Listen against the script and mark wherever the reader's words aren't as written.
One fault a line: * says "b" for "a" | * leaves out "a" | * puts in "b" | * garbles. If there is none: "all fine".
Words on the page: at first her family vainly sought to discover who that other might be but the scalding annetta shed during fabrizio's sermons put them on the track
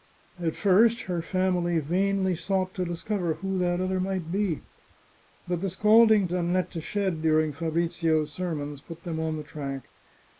all fine